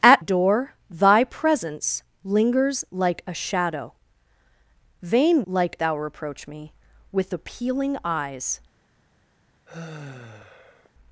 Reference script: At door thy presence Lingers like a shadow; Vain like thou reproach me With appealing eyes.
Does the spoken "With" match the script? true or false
true